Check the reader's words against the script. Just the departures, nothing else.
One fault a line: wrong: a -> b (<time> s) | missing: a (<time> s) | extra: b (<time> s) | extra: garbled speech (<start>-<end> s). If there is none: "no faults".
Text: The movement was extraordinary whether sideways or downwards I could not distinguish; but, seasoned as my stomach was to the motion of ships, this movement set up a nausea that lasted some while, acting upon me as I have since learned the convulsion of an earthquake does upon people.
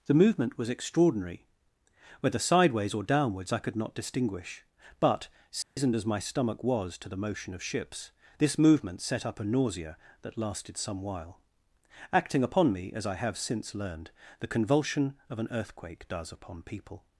no faults